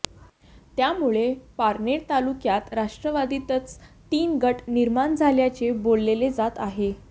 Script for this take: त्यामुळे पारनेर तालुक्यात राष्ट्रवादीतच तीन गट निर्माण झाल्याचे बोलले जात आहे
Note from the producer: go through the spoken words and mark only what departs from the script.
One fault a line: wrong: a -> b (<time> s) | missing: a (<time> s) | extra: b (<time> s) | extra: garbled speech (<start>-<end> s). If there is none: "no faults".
no faults